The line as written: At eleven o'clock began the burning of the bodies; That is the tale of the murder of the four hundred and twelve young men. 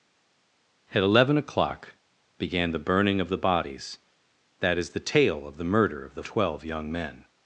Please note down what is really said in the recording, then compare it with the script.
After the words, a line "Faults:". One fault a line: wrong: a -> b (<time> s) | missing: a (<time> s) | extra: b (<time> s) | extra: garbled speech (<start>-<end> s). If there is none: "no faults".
At eleven o'clock began the burning of the bodies; That is the tale of the murder of the twelve young men.
Faults:
missing: four hundred and (6.2 s)